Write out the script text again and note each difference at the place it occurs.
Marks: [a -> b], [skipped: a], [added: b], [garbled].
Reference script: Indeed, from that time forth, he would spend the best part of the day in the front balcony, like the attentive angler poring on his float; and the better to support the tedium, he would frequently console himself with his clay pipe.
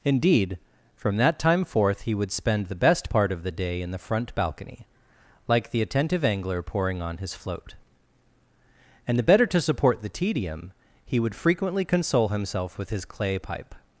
Indeed, from that time forth, he would spend the best part of the day in the front balcony, like the attentive angler poring on his float; and the better to support the tedium, he would frequently console himself with his clay pipe.